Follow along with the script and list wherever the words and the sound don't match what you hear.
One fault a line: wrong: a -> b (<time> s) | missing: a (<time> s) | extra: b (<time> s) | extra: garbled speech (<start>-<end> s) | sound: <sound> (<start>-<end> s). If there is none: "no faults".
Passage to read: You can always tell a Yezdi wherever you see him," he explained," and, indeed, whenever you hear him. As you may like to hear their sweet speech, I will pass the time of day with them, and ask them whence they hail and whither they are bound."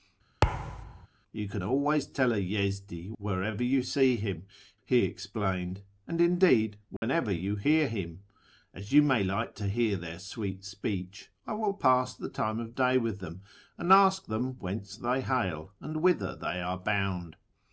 sound: thud (0.4-1.1 s)
sound: dropout (7.0-7.0 s)